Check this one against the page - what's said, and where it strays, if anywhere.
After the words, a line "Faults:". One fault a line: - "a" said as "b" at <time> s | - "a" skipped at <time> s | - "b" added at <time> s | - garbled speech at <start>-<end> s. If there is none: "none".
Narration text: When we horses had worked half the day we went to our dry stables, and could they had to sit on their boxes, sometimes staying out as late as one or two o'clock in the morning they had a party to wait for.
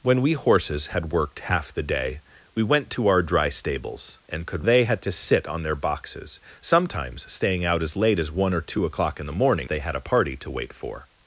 When we horses had worked half the day we went to our dry stables, and could they had to sit on their boxes, sometimes staying out as late as one or two o'clock in the morning they had a party to wait for.
Faults:
none